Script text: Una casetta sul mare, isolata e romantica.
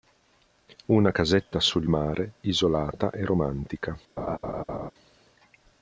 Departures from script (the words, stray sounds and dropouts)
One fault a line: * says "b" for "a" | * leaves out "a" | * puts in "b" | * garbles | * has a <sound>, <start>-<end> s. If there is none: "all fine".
* has a laugh, 4.2-4.9 s